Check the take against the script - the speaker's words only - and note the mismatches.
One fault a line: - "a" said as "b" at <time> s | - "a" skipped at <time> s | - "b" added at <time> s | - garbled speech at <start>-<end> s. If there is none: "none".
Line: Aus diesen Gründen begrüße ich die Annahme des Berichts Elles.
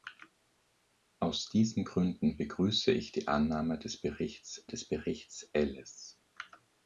- "des Berichts" added at 4.7 s